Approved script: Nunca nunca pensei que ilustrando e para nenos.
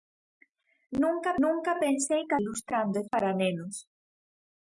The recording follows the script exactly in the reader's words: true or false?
true